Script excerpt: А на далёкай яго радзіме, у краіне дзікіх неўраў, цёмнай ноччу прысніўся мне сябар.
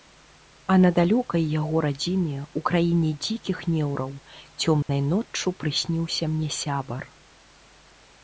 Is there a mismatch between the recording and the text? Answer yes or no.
no